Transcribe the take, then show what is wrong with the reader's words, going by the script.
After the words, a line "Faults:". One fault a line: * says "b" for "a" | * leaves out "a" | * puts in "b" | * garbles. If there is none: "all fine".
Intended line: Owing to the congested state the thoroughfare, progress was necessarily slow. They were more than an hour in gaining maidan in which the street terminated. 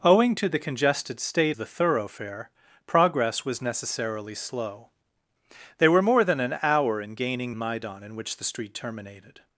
Owing to the congested state the thoroughfare, progress was necessarily slow. They were more than an hour in gaining maidan in which the street terminated.
Faults:
all fine